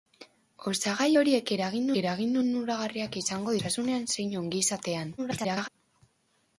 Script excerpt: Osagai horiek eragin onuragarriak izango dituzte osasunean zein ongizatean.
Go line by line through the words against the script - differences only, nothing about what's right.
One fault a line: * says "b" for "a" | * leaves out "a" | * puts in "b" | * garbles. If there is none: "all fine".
* puts in "eragin"
* leaves out "dituzte"
* garbles